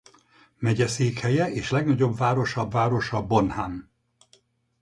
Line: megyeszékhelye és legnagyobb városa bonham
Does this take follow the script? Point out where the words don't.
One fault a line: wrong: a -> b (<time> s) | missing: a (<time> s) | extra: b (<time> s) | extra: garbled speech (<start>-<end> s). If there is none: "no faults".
extra: városa (2.7 s)